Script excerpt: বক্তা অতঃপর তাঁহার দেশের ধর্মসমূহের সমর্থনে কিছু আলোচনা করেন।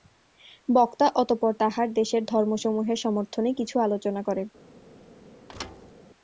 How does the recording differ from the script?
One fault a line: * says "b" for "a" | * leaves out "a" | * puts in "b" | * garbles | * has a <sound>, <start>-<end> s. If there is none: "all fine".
* has a thud, 5.5-5.9 s